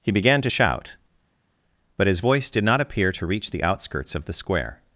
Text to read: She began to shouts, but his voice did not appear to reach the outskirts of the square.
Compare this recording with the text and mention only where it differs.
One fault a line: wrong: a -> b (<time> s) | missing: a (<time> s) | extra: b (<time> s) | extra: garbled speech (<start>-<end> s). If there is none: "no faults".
wrong: She -> He (0.0 s)
wrong: shouts -> shout (0.4 s)